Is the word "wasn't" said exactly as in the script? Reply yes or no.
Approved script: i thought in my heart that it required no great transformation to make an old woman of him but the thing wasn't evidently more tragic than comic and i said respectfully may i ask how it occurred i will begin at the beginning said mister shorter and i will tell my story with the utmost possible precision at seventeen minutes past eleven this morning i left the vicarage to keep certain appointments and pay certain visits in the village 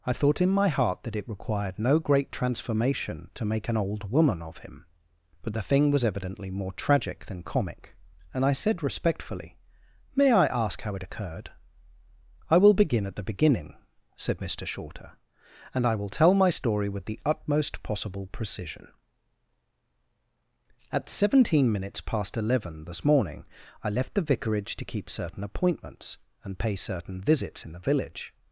no